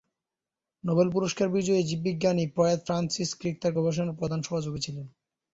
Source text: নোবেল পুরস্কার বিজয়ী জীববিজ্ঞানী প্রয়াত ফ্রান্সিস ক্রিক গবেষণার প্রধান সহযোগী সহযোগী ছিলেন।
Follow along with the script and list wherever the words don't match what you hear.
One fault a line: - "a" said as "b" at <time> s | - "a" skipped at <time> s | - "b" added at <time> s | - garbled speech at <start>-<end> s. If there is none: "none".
- "তার" added at 3.6 s
- "সহযোগী" skipped at 4.8 s